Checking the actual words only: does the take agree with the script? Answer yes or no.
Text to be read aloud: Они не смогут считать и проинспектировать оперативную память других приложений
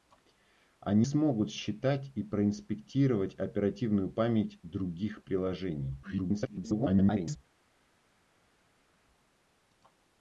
no